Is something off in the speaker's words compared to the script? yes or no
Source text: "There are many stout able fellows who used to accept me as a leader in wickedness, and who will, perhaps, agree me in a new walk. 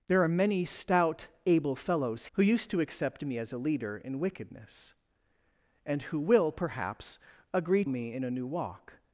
no